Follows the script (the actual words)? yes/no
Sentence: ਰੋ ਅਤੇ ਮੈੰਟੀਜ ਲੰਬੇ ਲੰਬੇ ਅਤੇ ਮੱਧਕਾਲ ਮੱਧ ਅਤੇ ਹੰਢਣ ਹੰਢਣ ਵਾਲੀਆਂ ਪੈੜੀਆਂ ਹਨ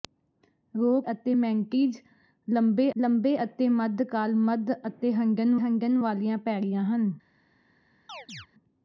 yes